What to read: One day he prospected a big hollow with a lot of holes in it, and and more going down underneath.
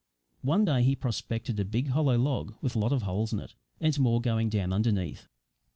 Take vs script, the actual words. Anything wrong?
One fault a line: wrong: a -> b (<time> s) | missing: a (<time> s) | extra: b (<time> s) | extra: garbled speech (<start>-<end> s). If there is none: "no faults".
extra: log (2.2 s)
missing: and (4.0 s)